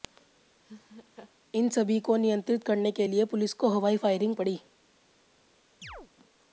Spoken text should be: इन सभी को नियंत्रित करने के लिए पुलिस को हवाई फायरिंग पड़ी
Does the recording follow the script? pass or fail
pass